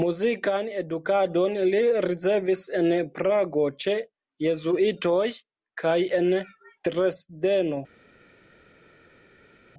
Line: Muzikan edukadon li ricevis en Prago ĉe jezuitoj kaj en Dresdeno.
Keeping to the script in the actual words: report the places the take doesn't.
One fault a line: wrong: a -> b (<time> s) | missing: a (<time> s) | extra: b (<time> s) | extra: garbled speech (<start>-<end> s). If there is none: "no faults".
no faults